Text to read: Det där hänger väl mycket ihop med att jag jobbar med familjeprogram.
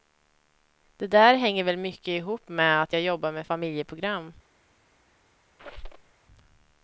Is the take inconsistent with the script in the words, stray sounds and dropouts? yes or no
yes